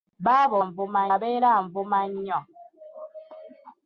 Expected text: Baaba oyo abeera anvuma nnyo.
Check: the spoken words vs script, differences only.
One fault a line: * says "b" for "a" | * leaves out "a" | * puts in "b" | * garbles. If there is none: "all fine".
* says "anvuma" for "oyo"